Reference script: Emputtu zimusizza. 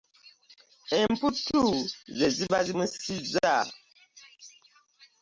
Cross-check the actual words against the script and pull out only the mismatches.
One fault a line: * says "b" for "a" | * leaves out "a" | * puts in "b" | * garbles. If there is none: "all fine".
* puts in "ze ziba"